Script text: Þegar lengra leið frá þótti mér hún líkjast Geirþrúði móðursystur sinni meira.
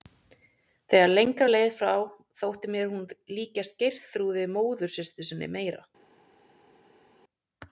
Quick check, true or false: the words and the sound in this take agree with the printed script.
true